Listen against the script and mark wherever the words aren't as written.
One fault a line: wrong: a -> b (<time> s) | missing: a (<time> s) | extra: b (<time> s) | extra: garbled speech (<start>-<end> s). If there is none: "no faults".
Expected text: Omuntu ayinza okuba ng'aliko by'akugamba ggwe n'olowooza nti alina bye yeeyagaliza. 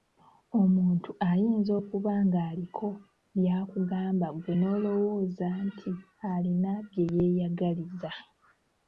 no faults